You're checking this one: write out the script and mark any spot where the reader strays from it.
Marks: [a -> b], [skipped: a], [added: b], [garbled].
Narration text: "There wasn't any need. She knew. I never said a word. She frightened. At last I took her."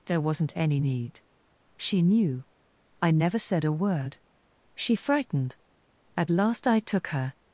"There wasn't any need. She knew. I never said a word. She frightened. At last I took her."